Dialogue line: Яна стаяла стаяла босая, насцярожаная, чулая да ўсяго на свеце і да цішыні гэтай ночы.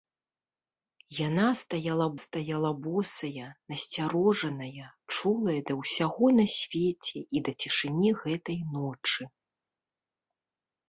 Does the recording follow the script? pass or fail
pass